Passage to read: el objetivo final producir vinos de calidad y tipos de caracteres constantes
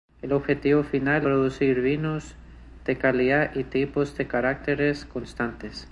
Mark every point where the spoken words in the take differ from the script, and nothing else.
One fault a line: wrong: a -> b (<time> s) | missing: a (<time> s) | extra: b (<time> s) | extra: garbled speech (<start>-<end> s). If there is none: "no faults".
no faults